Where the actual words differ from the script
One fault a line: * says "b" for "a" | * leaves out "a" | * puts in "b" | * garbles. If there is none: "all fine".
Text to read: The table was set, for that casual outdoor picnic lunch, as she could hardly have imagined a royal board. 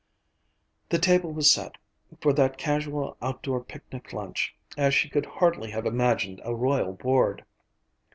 all fine